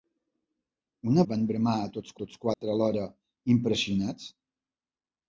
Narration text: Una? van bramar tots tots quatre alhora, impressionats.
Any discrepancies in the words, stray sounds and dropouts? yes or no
yes